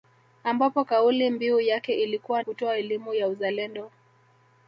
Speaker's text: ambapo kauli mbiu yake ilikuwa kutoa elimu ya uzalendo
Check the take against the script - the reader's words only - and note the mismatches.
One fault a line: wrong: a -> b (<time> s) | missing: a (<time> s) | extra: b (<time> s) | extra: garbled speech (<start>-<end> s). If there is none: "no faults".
no faults